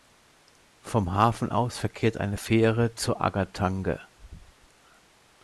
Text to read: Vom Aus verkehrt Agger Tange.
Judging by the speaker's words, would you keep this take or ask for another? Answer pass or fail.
fail